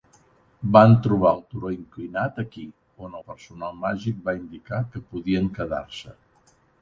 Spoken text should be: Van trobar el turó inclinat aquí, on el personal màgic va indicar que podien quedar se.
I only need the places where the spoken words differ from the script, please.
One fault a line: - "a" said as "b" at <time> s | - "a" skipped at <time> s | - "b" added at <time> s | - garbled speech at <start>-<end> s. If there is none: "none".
none